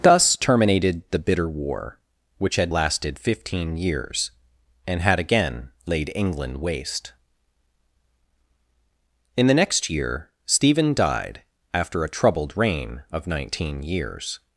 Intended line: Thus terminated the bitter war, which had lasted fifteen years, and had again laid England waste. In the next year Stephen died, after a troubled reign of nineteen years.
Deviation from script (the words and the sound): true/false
false